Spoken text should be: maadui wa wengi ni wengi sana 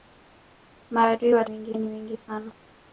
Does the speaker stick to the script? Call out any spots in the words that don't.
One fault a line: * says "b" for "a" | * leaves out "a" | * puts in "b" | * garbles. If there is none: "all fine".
all fine